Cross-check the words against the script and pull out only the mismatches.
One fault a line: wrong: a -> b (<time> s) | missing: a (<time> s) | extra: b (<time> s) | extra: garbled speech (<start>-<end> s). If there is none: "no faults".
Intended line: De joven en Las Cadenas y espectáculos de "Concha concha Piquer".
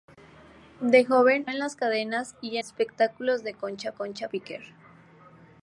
no faults